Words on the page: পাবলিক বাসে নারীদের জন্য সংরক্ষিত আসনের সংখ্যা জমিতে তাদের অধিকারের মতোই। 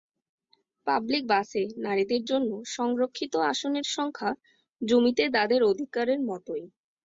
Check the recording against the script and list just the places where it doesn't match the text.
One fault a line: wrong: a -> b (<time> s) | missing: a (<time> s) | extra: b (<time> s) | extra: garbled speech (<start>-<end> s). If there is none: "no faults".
no faults